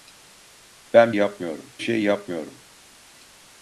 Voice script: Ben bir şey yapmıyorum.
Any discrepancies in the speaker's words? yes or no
yes